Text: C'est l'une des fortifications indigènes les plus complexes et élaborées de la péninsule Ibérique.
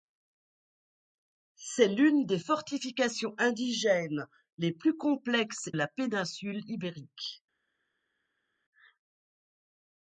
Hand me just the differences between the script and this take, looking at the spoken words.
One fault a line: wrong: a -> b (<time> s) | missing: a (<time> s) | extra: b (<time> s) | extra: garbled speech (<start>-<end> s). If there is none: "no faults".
missing: et élaborées de (5.7 s)